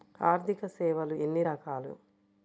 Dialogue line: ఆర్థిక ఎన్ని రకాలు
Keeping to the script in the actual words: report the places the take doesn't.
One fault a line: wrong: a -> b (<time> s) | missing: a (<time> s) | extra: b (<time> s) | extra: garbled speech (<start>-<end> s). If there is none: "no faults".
extra: సేవలు (0.7 s)